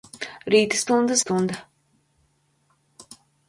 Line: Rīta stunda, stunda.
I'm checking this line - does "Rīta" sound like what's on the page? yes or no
yes